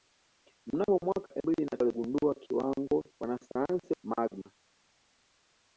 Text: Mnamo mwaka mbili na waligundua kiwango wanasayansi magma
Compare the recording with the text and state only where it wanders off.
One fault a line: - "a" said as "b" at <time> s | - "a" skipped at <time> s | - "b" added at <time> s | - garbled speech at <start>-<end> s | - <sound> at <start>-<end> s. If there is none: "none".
none